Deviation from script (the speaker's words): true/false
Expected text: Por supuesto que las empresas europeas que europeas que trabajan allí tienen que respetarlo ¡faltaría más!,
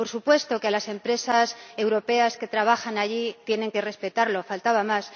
true